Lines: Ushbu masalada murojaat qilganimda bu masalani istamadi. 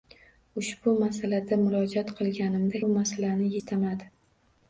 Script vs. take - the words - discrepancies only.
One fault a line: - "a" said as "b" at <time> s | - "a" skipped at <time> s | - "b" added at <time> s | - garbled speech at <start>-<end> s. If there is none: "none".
none